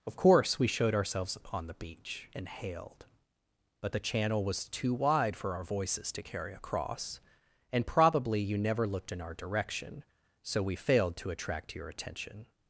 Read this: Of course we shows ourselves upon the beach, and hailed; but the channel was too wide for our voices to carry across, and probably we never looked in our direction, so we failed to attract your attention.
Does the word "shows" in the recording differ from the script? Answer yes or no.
yes